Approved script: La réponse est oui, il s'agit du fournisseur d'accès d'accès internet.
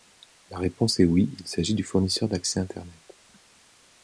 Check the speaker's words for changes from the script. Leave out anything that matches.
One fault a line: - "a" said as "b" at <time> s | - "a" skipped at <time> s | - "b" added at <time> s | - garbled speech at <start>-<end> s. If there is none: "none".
- "d'accès" skipped at 2.6 s